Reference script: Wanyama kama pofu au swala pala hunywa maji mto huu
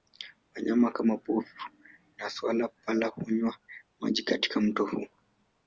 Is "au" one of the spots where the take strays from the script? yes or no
yes